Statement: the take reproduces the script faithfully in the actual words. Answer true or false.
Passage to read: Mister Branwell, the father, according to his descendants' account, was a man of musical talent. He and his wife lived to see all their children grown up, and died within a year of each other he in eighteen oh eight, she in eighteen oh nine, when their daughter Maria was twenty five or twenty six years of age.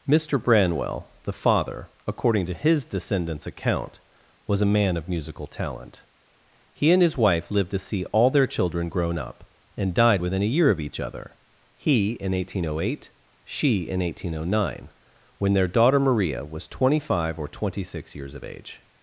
true